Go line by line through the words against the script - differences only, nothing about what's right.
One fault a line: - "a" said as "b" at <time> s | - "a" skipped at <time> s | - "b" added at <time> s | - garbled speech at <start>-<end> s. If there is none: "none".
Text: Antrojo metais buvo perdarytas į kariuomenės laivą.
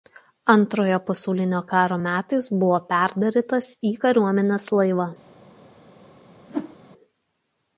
- "pasaulinio karo" added at 1.1 s